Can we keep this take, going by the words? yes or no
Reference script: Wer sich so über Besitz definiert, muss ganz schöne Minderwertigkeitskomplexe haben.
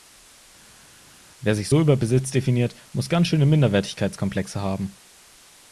yes